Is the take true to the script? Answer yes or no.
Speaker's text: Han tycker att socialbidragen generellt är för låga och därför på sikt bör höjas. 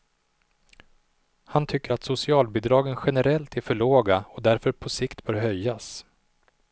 yes